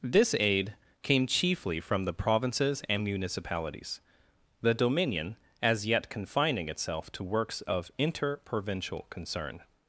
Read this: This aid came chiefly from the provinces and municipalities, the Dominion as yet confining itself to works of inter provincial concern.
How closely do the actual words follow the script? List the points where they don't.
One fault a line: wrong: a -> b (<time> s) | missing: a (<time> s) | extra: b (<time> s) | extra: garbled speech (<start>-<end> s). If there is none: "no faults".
no faults